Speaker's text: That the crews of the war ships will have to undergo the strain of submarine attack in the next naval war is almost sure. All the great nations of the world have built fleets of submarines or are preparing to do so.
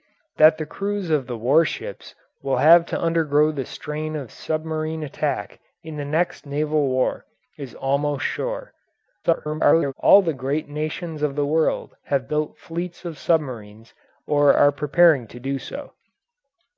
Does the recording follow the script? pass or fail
fail